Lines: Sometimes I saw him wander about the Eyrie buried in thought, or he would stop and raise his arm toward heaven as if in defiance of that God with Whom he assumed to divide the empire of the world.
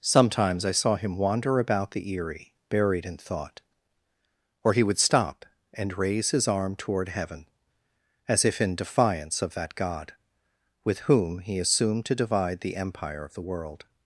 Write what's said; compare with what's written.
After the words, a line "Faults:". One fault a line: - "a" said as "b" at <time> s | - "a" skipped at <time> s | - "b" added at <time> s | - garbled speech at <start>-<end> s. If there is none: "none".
Sometimes I saw him wander about the Eyrie buried in thought, or he would stop and raise his arm toward heaven as if in defiance of that God with Whom he assumed to divide the empire of the world.
Faults:
none